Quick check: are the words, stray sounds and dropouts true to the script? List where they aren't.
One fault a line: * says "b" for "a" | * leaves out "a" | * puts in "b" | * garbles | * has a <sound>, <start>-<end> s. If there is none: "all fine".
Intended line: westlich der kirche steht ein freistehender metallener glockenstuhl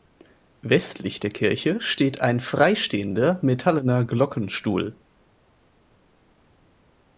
all fine